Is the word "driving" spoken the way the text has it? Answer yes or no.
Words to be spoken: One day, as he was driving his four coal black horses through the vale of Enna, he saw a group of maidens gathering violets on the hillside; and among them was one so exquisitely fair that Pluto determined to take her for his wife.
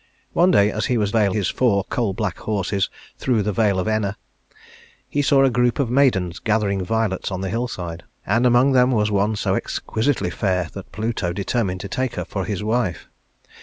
no